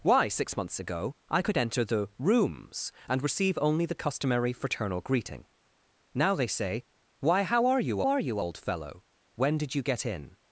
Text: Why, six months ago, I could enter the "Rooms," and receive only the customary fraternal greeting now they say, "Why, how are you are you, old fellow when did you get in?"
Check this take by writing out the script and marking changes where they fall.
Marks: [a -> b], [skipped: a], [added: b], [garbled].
Why, six months ago, I could enter the "Rooms," and receive only the customary fraternal greeting now they say, "Why, how are you are you, old fellow when did you get in?"